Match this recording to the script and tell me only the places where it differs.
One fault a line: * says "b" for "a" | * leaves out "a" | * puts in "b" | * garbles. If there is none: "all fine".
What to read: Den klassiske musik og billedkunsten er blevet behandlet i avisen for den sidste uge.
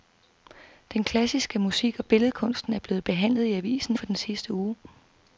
all fine